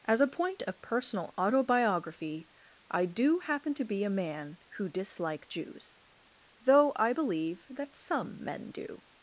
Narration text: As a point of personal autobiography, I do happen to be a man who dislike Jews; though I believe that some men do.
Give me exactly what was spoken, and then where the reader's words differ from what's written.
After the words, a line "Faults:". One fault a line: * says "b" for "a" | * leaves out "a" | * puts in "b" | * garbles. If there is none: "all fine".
As a point of personal autobiography, I do happen to be a man who dislike Jews; though I believe that some men do.
Faults:
all fine